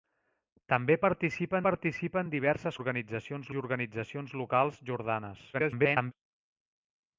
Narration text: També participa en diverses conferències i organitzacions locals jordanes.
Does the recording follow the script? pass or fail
fail